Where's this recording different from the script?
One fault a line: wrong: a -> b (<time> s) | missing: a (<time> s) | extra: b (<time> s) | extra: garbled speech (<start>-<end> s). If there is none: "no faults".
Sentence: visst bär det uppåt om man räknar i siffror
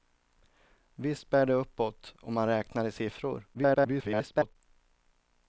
extra: garbled speech (3.5-4.6 s)